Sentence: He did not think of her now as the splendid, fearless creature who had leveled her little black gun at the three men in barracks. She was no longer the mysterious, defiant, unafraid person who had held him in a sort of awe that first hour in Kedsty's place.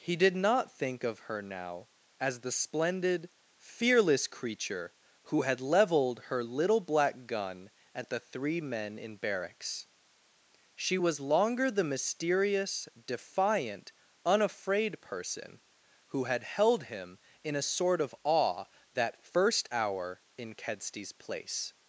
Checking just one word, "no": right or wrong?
wrong